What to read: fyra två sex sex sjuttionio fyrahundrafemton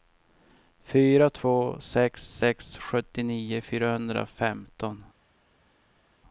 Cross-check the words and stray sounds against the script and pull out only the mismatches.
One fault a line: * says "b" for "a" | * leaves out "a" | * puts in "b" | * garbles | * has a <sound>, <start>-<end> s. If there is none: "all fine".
all fine